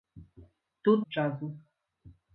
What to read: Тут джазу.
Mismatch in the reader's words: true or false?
false